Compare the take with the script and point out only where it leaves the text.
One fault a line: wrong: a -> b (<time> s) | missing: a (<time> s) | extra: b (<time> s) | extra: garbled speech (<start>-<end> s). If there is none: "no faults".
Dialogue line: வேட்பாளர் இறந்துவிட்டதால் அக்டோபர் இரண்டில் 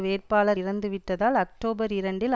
no faults